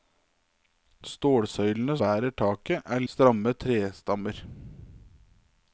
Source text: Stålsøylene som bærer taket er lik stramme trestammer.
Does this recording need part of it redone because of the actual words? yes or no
yes